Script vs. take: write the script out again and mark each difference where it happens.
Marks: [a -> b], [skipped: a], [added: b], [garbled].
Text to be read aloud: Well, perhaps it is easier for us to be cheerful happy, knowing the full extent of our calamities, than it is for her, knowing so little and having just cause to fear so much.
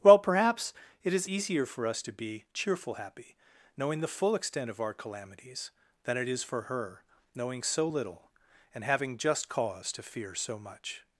Well, perhaps it is easier for us to be cheerful happy, knowing the full extent of our calamities, than it is for her, knowing so little and having just cause to fear so much.